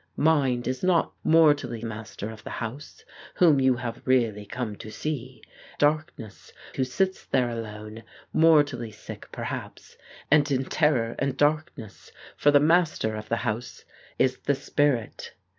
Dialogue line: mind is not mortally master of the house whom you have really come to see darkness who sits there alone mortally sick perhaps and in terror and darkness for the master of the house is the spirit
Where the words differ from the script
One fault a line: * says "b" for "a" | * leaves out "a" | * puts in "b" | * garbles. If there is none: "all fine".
all fine